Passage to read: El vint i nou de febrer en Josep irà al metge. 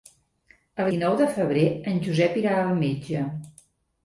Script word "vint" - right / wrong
wrong